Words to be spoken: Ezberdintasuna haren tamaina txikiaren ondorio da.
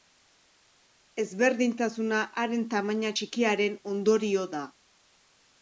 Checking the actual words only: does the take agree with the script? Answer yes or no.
yes